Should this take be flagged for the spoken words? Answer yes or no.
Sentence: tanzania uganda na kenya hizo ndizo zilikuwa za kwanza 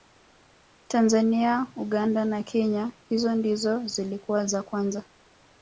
no